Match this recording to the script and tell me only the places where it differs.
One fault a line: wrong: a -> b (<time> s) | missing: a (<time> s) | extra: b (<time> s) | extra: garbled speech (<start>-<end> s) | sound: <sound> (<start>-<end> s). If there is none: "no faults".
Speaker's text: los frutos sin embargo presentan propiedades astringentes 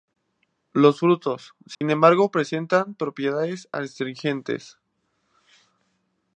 sound: dropout (1.7-1.8 s)